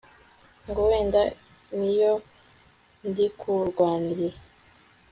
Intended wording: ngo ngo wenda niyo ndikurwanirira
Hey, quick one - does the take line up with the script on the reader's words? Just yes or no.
no